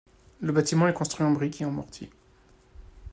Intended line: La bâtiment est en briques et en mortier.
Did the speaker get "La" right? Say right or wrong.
wrong